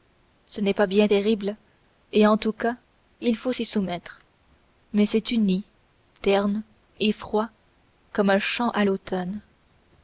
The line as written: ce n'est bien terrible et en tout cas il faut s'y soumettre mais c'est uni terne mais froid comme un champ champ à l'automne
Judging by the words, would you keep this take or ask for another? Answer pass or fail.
fail